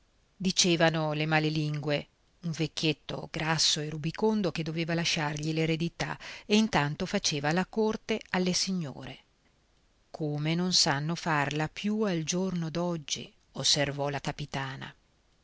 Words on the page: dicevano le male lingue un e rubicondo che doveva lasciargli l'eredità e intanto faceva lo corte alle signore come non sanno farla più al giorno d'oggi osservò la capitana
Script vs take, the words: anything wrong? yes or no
yes